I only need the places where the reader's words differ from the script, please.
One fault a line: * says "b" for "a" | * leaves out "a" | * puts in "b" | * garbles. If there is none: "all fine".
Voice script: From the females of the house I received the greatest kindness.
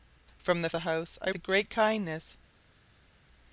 * leaves out "females of"
* leaves out "received"